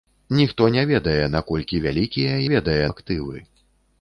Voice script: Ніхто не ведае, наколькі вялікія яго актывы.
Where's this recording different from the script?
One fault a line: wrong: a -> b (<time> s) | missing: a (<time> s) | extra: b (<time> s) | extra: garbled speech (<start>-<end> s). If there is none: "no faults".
wrong: яго -> ведае (2.5 s)